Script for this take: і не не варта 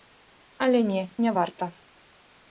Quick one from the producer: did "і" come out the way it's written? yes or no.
no